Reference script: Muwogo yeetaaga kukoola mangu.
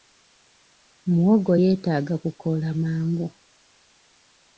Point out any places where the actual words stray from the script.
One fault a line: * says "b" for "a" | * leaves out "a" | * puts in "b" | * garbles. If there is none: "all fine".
all fine